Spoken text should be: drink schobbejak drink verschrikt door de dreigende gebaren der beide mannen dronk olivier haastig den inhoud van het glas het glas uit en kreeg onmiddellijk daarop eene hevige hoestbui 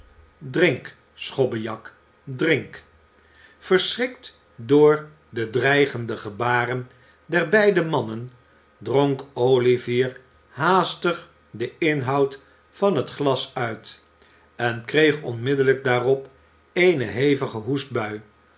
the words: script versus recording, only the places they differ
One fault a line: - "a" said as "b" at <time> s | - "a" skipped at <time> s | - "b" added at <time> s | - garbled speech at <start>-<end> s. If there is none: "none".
- "het glas" skipped at 13.5 s